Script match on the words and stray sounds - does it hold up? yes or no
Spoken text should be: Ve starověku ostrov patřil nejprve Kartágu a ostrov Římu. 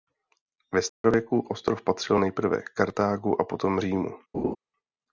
no